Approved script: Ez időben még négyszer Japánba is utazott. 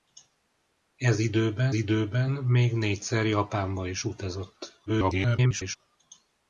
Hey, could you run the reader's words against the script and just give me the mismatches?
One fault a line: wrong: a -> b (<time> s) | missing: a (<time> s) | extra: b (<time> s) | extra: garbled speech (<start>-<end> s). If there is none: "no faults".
extra: időben (1.7 s)
extra: garbled speech (4.9-5.8 s)